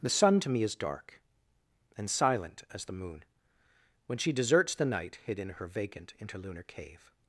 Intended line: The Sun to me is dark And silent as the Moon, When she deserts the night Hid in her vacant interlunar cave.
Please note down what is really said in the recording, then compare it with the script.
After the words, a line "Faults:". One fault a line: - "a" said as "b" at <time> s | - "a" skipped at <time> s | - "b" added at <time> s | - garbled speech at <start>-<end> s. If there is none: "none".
The Sun to me is dark And silent as the Moon, When she deserts the night Hid in her vacant interlunar cave.
Faults:
none